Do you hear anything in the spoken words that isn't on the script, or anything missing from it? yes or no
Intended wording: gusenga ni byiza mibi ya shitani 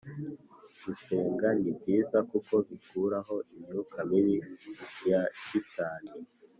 yes